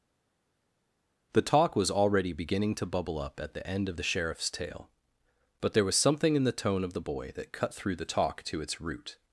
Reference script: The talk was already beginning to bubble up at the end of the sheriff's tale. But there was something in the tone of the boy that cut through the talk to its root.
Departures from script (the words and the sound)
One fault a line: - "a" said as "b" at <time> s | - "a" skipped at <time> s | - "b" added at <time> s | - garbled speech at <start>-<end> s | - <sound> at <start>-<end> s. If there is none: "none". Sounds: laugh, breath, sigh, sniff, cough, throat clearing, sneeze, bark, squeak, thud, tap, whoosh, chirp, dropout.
none